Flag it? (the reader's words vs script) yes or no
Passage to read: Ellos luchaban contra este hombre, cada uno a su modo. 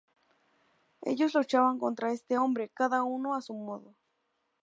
no